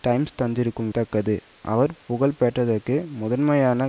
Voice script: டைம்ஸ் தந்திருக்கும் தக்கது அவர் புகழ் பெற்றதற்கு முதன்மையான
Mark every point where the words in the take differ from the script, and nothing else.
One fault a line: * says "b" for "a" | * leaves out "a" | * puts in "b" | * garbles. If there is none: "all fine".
all fine